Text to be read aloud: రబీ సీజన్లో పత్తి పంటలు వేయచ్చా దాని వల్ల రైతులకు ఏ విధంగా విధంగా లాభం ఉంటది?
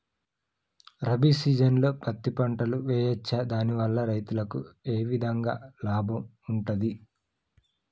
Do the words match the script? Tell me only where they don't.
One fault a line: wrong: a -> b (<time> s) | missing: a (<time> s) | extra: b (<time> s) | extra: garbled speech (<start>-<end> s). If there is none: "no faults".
missing: విధంగా (5.6 s)